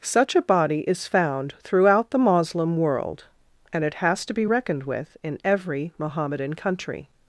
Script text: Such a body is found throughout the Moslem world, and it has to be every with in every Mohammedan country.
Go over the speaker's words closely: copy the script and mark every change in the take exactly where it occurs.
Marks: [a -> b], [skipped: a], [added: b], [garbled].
Such a body is found throughout the Moslem world, and it has to be [every -> reckoned] with in every Mohammedan country.